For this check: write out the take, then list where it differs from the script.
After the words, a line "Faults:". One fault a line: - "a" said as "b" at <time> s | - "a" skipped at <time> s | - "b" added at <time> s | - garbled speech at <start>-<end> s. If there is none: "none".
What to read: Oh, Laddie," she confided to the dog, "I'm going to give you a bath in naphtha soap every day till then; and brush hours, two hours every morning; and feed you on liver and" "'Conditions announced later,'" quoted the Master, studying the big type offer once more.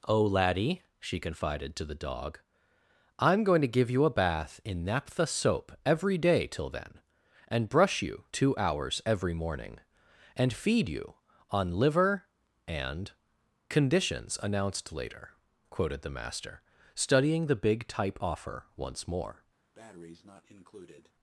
Oh, Laddie," she confided to the dog, "I'm going to give you a bath in naphtha soap every day till then; and brush you, two hours every morning; and feed you on liver and" "'Conditions announced later,'" quoted the Master, studying the big type offer once more.
Faults:
- "hours" said as "you" at 8.0 s